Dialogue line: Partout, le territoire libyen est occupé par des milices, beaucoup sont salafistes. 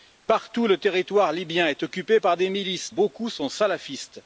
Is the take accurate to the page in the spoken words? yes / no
yes